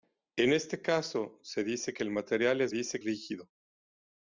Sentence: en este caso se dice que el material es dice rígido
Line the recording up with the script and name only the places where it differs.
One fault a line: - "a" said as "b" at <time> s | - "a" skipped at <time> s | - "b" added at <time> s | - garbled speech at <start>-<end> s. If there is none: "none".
none